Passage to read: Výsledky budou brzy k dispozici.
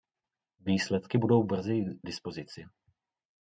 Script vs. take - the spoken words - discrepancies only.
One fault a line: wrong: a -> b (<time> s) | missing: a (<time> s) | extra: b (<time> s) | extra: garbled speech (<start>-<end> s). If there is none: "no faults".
missing: k (1.8 s)